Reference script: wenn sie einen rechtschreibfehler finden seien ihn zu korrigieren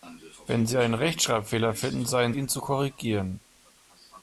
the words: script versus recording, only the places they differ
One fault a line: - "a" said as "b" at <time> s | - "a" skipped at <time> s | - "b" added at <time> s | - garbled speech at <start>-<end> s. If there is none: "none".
none